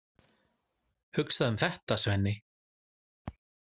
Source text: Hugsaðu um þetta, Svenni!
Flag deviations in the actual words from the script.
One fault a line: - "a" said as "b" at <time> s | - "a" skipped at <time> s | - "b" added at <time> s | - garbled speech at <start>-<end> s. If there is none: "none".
none